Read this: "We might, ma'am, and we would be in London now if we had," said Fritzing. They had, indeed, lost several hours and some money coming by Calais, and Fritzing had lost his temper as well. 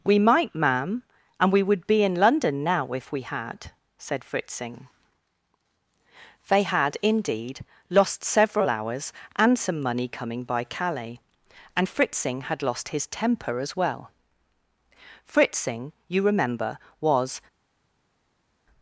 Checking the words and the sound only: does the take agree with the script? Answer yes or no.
no